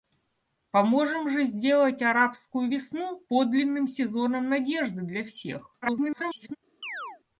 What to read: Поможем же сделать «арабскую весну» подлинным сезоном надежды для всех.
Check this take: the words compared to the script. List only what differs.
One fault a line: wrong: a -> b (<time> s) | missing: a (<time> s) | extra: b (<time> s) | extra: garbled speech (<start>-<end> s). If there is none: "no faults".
extra: garbled speech (5.8-6.6 s)